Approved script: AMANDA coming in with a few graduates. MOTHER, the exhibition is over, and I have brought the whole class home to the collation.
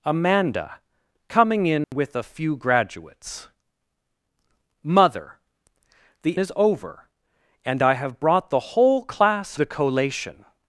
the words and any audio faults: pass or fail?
fail